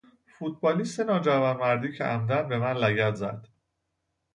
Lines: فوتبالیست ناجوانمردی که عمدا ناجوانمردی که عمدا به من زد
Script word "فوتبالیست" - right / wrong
right